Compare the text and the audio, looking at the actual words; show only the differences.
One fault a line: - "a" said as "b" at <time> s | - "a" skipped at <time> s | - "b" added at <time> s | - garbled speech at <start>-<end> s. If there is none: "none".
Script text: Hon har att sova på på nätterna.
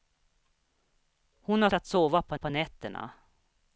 none